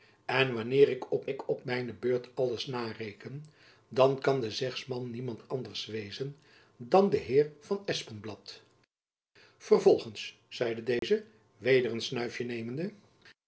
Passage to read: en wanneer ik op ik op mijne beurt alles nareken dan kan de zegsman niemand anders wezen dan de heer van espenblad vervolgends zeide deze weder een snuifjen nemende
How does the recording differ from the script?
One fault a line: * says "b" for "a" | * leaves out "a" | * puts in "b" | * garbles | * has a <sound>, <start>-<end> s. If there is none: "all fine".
* has a dropout, 11.0-11.0 s